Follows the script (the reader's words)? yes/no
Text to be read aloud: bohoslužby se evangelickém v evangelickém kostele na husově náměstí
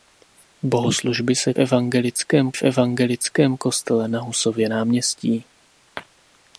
yes